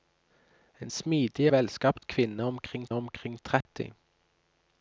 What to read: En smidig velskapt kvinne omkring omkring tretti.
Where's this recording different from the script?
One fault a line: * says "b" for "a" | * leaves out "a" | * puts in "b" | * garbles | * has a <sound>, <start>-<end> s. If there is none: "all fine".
* has a dropout, 3.6-3.7 s